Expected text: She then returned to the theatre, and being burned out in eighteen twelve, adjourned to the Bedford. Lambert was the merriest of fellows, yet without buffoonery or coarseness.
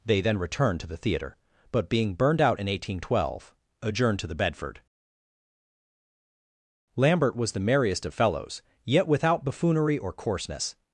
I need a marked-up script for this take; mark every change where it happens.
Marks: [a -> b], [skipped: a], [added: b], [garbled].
[She -> They] then returned to the theatre, [and -> but] being burned out in eighteen twelve, adjourned to the Bedford. Lambert was the merriest of fellows, yet without buffoonery or coarseness.